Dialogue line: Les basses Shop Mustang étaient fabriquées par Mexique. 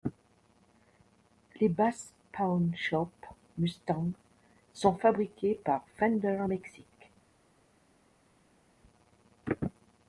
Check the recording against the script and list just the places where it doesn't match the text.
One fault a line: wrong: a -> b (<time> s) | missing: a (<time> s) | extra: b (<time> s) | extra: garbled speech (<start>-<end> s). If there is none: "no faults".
extra: Pawn (2.3 s)
wrong: étaient -> sont (4.7 s)
extra: Fender (5.9 s)